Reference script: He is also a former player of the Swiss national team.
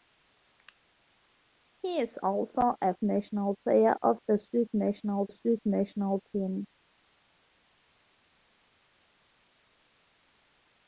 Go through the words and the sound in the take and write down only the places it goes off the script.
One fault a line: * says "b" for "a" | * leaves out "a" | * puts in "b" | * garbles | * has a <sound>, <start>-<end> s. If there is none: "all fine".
* says "national" for "former"
* puts in "Swiss national"